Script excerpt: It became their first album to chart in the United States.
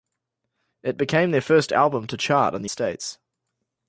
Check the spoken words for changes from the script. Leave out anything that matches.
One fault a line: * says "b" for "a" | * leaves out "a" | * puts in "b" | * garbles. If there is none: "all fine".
* leaves out "United"